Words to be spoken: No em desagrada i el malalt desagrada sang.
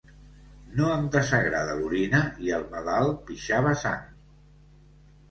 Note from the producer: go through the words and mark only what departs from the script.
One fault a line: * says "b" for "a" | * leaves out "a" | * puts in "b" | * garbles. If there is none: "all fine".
* puts in "l'orina"
* says "pixava" for "desagrada"